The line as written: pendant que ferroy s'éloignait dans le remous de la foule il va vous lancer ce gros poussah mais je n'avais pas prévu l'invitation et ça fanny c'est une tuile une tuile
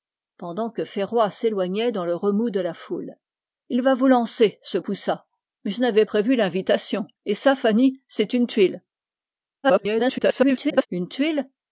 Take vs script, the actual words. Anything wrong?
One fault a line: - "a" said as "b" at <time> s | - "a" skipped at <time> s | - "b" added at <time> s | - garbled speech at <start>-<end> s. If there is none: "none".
- "gros" skipped at 4.8 s
- "pas" skipped at 6.0 s
- garbled speech at 9.6-10.9 s